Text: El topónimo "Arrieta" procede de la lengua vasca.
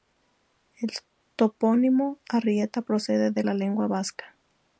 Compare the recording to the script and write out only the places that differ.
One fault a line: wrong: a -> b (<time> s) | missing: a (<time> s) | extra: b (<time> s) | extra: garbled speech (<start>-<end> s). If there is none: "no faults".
no faults